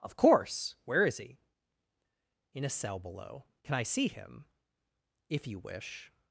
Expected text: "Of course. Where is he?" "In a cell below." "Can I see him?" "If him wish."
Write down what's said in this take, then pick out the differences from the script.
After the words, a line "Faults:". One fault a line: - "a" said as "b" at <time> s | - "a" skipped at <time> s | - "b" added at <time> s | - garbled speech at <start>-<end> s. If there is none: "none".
"Of course. Where is he?" "In a cell below." "Can I see him?" "If you wish."
Faults:
- "him" said as "you" at 5.5 s